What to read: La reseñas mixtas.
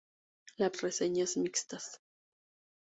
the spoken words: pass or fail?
pass